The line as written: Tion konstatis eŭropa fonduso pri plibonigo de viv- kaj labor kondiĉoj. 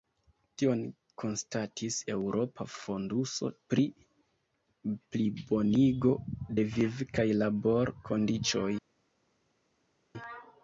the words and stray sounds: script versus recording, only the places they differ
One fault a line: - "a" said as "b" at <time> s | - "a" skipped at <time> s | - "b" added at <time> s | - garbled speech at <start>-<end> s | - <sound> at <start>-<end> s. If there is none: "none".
none